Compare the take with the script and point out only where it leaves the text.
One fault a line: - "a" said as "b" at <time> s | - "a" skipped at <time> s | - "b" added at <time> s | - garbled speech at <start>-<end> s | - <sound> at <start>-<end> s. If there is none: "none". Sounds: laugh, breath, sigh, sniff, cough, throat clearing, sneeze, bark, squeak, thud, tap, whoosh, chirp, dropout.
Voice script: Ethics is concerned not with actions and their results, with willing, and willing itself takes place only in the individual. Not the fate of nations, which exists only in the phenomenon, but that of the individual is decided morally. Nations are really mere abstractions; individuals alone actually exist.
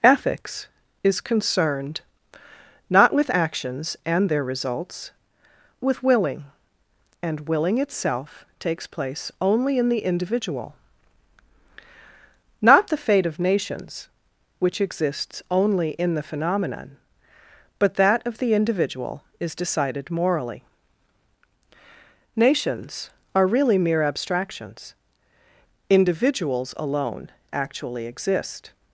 none